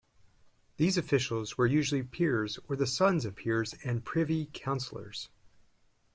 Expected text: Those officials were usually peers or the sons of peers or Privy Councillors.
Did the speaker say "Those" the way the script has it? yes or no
no